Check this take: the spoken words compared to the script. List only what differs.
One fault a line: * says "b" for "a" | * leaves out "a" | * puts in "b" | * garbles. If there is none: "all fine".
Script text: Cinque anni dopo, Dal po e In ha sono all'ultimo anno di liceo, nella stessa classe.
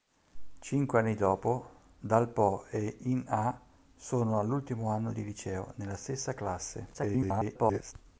* garbles